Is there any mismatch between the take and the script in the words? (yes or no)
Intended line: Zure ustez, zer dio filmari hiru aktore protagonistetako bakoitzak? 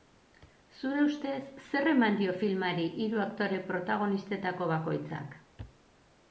yes